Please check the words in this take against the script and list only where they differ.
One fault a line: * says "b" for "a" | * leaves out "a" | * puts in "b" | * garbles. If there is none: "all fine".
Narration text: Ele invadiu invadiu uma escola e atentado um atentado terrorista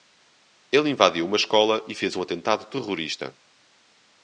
* leaves out "invadiu"
* says "fez" for "atentado"